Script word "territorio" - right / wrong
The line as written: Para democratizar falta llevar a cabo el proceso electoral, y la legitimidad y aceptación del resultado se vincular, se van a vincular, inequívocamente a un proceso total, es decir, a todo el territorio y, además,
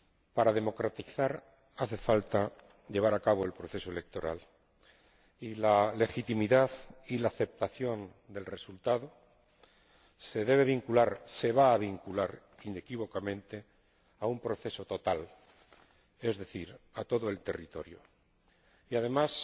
right